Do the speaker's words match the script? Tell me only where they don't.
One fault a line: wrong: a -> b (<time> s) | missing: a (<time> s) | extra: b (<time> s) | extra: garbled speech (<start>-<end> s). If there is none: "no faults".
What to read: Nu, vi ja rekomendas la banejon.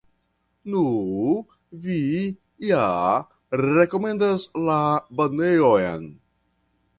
no faults